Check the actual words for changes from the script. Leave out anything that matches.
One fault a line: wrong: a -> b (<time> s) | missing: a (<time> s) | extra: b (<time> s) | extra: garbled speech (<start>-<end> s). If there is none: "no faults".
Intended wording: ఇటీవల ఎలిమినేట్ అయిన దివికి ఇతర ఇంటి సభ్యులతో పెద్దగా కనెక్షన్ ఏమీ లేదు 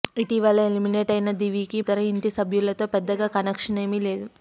no faults